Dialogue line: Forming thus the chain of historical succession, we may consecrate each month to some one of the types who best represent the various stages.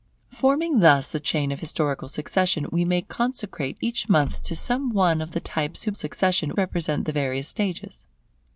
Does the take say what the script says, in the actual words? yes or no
no